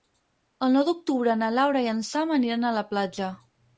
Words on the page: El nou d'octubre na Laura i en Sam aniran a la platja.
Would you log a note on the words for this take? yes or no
no